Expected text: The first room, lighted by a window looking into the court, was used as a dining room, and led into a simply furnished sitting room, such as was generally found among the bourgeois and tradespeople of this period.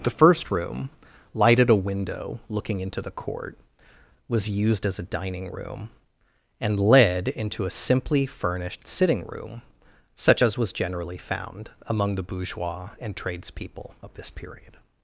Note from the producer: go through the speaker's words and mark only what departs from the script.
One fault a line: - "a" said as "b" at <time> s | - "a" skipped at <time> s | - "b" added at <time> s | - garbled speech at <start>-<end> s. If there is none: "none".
- "by" skipped at 1.7 s